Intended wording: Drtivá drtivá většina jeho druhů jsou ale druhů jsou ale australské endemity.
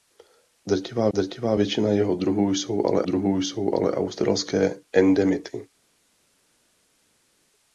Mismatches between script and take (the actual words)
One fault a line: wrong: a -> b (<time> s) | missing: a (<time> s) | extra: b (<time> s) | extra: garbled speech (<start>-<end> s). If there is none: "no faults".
no faults